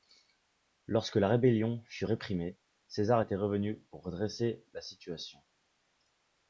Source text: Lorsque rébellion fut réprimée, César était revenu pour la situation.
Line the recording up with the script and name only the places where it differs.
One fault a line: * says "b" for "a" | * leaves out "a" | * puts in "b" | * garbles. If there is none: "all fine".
* puts in "la"
* puts in "redresser"